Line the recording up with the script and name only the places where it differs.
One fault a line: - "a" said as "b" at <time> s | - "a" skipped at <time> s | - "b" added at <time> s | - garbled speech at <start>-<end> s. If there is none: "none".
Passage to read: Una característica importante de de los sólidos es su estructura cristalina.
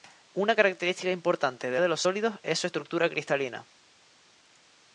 none